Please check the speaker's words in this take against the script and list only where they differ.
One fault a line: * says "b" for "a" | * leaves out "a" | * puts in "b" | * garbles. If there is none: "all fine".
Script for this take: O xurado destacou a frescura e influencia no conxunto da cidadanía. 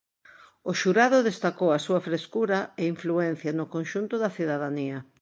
* puts in "súa"